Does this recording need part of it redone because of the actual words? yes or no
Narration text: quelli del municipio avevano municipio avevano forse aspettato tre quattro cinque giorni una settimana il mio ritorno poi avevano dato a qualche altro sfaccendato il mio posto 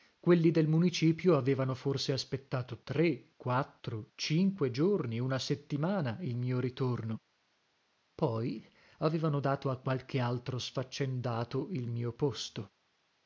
yes